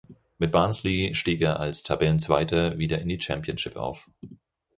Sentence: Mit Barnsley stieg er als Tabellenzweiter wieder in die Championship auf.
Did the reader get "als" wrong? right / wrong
right